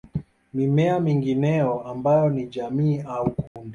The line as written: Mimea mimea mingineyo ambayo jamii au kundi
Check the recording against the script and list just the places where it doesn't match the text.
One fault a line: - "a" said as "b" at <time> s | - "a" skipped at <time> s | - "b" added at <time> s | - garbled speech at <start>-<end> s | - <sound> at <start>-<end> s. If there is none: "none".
- "mimea" skipped at 1.0 s
- "ni" added at 2.3 s
- dropout at 3.5-3.6 s